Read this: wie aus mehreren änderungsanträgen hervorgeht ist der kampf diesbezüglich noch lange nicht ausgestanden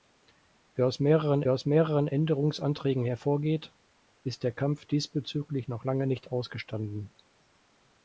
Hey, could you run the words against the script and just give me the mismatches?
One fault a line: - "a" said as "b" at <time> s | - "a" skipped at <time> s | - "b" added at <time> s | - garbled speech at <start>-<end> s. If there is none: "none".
- "aus mehreren" added at 1.5 s